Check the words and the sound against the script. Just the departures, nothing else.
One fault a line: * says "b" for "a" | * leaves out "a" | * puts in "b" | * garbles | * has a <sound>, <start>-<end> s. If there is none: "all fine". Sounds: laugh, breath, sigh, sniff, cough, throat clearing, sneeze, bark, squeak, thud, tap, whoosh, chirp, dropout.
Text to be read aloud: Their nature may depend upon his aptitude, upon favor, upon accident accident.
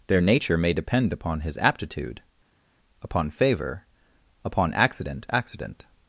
all fine